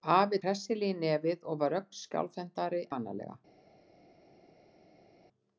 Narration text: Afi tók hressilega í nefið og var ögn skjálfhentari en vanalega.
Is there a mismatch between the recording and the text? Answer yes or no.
yes